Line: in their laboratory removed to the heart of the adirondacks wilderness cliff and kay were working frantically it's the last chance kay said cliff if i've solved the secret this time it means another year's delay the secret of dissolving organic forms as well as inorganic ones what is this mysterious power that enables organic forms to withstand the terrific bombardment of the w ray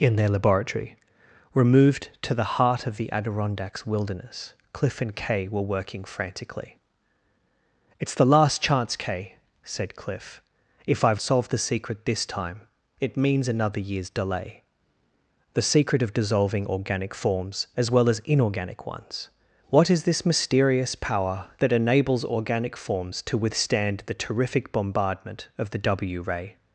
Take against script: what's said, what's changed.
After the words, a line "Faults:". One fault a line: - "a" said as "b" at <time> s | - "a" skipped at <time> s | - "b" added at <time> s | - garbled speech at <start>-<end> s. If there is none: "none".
in their laboratory removed to the heart of the adirondacks wilderness cliff and kay were working frantically it's the last chance kay said cliff if i've solved the secret this time it means another year's delay the secret of dissolving organic forms as well as inorganic ones what is this mysterious power that enables organic forms to withstand the terrific bombardment of the w ray
Faults:
none